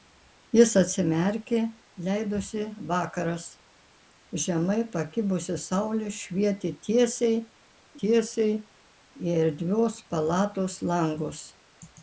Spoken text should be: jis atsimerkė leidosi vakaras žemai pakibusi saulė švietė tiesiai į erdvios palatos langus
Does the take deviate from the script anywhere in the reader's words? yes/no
yes